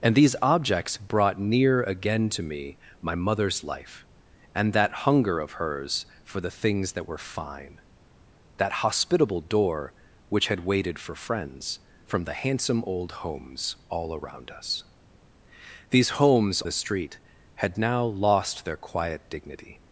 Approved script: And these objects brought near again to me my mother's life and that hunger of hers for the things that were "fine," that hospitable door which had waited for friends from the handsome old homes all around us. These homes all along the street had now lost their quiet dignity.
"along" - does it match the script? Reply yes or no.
no